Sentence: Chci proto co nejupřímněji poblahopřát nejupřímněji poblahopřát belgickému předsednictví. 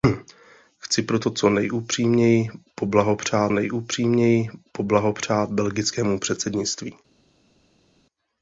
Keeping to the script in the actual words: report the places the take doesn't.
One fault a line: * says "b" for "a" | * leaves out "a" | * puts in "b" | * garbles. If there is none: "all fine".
all fine